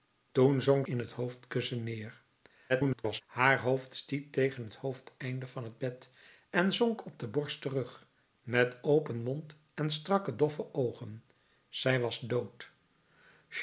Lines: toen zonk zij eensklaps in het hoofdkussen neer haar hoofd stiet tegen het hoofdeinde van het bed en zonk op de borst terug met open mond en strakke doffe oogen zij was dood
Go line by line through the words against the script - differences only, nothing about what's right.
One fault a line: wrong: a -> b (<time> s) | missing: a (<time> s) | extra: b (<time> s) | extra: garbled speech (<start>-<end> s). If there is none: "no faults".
missing: zij eensklaps (0.9 s)
extra: garbled speech (2.7-3.2 s)